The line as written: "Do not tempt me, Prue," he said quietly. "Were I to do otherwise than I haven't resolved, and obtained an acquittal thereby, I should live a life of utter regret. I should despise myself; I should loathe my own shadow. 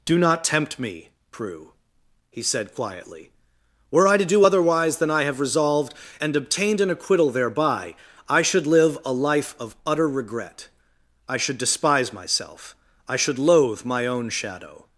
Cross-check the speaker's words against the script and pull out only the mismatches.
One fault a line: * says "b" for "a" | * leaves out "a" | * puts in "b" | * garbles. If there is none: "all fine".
* says "have" for "haven't"